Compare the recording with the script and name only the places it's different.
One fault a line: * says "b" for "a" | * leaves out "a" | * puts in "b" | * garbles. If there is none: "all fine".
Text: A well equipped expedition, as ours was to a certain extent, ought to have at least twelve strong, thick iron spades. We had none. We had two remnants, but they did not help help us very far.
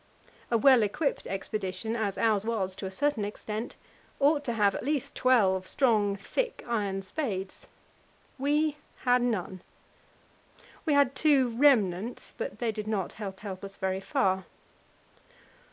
all fine